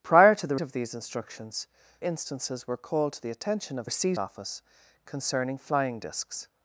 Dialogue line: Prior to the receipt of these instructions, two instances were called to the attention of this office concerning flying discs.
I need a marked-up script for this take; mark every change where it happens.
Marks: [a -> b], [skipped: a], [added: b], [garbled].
Prior to the [skipped: receipt] of these instructions, [skipped: two] instances were called to the attention of [this -> receipt] office concerning flying discs.